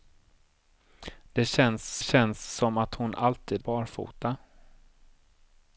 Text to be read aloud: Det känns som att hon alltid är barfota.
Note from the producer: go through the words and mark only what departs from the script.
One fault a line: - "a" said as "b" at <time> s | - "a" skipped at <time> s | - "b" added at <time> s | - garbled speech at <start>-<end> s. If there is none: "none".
- "känns" added at 2.0 s
- "är" skipped at 3.6 s